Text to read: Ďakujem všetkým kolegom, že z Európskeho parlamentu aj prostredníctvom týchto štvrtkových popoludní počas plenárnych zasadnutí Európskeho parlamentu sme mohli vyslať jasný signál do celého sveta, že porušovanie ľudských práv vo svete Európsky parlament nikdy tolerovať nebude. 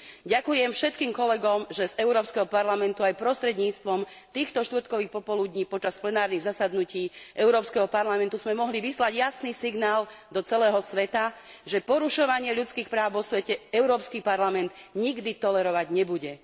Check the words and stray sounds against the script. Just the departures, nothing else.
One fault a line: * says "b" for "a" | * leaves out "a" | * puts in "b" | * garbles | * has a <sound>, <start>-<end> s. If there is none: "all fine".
all fine